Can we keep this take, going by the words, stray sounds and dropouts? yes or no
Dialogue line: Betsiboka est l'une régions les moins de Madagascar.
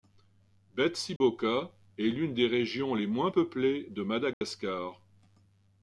no